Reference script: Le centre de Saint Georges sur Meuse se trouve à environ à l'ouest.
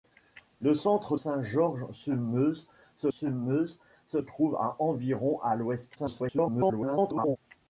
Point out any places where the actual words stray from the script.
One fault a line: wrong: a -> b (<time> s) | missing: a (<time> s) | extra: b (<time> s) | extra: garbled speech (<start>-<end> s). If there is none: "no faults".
missing: de (1.1 s)
extra: sur Meuse se (3.1 s)
extra: garbled speech (6.0-7.4 s)